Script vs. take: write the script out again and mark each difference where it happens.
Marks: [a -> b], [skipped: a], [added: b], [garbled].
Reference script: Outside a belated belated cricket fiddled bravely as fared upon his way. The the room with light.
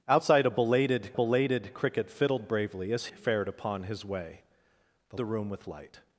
Outside a belated belated cricket fiddled bravely as fared upon his way. The the room with light.